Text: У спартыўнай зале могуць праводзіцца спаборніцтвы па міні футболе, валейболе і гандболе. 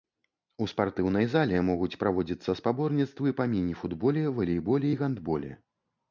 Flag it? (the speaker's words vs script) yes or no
no